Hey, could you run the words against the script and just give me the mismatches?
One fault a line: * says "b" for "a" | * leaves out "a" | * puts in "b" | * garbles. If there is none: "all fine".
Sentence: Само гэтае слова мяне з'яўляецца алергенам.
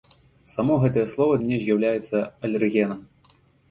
all fine